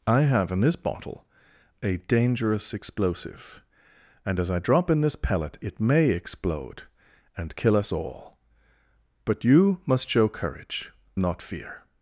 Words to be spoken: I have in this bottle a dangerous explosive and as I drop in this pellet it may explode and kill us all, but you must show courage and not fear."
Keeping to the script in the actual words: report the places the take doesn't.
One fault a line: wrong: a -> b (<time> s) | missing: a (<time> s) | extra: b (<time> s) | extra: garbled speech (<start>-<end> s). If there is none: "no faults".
missing: and (10.9 s)